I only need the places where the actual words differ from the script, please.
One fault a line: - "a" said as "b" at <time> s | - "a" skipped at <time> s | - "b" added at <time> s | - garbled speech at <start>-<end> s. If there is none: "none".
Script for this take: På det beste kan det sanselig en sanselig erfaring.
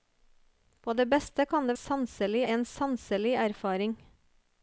none